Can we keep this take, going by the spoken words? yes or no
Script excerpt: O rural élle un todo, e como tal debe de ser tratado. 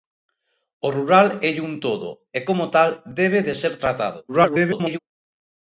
no